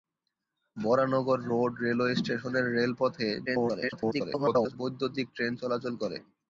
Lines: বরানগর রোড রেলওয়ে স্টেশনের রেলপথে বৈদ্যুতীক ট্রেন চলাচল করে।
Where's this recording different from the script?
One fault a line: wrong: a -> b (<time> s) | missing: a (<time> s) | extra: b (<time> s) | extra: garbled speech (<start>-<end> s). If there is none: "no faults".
extra: garbled speech (3.5-4.8 s)